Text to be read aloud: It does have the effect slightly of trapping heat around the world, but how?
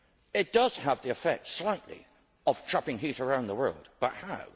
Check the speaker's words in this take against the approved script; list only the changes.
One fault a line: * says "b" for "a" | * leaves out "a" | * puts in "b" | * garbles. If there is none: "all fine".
all fine